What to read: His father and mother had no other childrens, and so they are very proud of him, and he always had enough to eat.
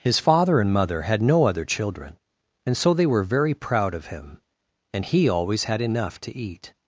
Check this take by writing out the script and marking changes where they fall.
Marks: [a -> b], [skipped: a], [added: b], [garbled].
His father and mother had no other [childrens, -> children] and so they [are -> were] very proud of him, and he always had enough to eat.